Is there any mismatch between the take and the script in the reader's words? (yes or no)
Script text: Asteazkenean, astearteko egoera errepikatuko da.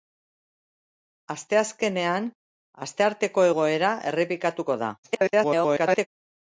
yes